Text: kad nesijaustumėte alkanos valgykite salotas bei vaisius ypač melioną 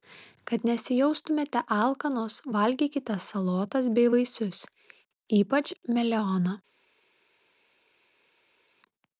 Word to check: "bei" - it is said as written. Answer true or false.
true